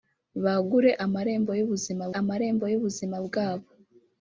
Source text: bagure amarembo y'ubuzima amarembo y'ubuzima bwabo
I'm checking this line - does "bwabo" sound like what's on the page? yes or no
yes